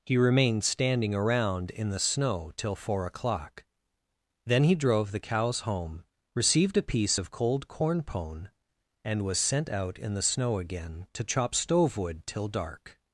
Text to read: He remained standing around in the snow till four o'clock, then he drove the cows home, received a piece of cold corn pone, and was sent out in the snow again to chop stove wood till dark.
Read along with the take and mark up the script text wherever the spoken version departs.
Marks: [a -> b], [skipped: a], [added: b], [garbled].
He remained standing around in the snow till four o'clock, then he drove the cows home, received a piece of cold corn pone, and was sent out in the snow again to chop stove wood till dark.